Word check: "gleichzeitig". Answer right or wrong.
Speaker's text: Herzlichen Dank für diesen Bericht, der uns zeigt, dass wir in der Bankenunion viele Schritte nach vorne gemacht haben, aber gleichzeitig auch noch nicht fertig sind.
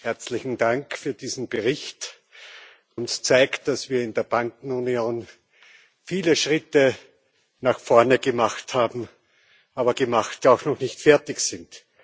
wrong